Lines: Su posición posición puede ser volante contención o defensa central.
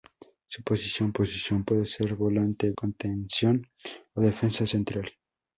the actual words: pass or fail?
pass